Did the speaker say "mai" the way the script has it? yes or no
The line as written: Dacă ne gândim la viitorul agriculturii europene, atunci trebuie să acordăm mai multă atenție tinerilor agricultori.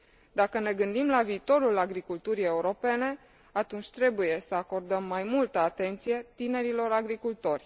yes